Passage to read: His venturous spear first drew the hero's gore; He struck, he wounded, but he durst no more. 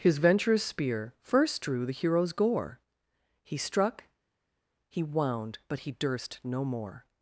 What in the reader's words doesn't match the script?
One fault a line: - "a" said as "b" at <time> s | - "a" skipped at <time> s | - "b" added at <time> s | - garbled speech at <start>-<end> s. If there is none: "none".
- "wounded" said as "wound" at 5.0 s